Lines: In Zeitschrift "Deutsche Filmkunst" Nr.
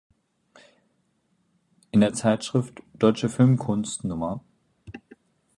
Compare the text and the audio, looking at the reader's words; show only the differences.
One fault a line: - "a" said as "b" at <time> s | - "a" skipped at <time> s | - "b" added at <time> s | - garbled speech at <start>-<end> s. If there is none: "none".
- "der" added at 2.0 s